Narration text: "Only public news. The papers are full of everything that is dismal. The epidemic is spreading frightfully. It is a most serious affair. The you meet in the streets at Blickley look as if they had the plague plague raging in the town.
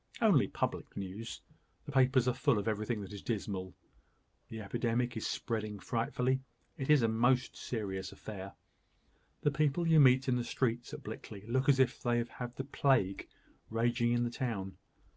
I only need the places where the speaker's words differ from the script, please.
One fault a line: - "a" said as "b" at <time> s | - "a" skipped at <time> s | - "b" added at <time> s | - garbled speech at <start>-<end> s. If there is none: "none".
- "people" added at 9.5 s
- "plague" skipped at 13.3 s